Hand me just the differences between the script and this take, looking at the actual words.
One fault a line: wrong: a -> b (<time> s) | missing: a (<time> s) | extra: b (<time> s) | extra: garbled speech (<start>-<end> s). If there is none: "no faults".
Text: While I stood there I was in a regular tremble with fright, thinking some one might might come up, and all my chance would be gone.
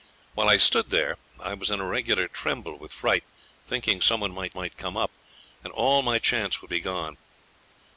no faults